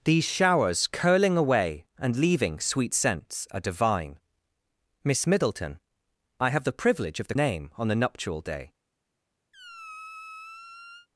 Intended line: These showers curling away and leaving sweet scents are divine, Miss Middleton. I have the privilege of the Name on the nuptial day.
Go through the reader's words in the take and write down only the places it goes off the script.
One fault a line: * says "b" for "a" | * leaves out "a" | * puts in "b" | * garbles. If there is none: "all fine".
all fine